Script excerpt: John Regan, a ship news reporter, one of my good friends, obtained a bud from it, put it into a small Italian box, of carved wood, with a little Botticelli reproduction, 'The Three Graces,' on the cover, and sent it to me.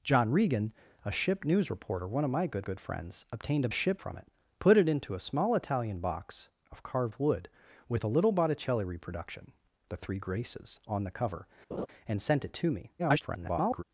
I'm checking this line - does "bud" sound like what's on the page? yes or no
no